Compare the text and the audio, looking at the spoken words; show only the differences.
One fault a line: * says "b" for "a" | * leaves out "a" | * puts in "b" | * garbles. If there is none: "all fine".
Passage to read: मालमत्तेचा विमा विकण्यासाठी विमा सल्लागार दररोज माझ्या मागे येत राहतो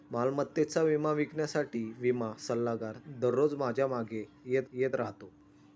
* puts in "येत"